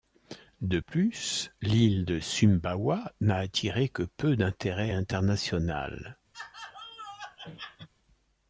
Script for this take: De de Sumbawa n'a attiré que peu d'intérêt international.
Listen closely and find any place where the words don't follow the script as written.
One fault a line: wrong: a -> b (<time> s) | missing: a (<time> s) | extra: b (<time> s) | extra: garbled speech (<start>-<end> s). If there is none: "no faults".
extra: plus l'île (0.8 s)